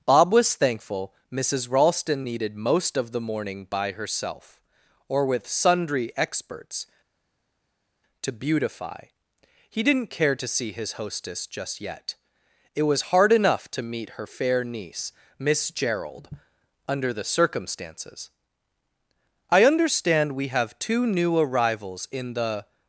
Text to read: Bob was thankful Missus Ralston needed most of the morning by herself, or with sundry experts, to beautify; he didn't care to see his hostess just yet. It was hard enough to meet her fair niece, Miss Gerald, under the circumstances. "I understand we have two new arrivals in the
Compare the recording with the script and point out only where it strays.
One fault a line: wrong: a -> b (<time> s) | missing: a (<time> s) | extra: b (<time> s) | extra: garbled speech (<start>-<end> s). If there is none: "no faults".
no faults